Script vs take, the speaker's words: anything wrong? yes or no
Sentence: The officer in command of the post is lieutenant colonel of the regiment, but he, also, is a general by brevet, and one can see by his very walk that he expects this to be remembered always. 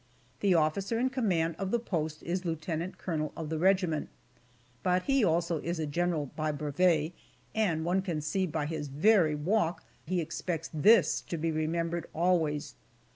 yes